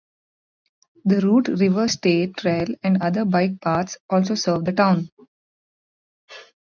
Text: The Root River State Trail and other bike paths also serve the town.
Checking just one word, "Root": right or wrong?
right